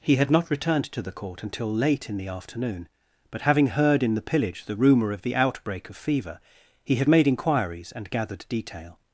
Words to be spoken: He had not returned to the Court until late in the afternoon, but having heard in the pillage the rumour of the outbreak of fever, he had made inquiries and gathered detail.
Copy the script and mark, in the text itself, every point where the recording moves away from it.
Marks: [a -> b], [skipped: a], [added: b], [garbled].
He had not returned to the Court until late in the afternoon, but having heard in the pillage the rumour of the outbreak of fever, he had made inquiries and gathered detail.